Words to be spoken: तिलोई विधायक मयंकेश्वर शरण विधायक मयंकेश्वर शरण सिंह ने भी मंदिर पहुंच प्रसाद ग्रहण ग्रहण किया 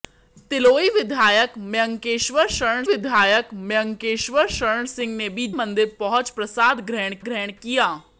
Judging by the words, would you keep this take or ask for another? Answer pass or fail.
pass